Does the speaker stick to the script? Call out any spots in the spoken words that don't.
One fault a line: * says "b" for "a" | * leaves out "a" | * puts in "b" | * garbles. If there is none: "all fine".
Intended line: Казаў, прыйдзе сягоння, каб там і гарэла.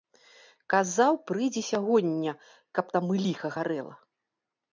* puts in "ліха"